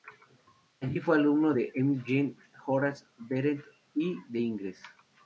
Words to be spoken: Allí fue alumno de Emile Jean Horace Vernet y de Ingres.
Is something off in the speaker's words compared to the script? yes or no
no